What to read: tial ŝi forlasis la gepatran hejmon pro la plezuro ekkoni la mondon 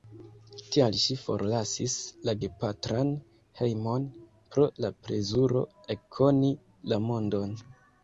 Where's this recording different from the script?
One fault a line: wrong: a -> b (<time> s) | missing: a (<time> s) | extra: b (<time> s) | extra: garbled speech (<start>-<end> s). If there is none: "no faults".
no faults